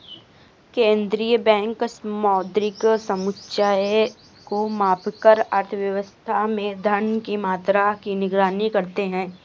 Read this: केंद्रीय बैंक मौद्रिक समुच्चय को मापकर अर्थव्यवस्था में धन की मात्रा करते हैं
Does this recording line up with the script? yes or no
no